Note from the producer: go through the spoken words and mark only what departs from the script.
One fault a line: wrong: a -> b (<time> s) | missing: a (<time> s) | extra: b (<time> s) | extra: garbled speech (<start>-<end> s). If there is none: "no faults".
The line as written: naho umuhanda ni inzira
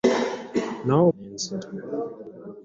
missing: umuhanda (1.0 s)